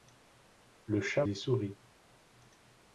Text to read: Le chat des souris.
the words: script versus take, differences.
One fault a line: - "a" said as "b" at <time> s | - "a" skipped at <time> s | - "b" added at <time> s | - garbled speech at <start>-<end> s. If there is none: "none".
none